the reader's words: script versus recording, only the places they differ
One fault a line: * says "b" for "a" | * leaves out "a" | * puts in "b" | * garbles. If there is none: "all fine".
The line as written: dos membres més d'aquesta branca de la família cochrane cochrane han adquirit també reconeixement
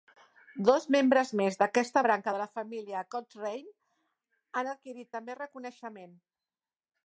* leaves out "cochrane"